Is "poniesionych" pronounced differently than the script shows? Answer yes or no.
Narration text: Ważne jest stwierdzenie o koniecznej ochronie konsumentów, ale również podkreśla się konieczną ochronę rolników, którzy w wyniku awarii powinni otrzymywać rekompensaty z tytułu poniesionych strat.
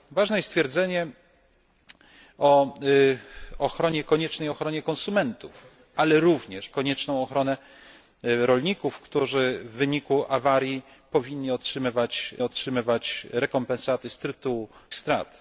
yes